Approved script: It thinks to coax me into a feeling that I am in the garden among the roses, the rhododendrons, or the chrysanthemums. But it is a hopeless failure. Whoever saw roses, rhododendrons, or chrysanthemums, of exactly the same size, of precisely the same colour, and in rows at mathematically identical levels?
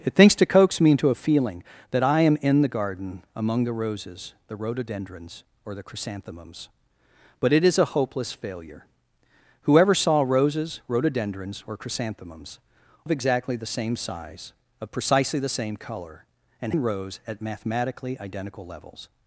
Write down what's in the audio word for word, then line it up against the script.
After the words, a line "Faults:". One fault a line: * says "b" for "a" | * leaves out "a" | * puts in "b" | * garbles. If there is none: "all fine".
It thinks to coax me into a feeling that I am in the garden among the roses, the rhododendrons, or the chrysanthemums. But it is a hopeless failure. Whoever saw roses, rhododendrons, or chrysanthemums, of exactly the same size, of precisely the same colour, and in rows at mathematically identical levels?
Faults:
all fine